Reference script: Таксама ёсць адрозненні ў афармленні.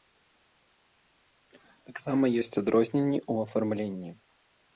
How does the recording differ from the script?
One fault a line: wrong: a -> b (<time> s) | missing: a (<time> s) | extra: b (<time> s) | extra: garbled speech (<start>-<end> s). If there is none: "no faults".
no faults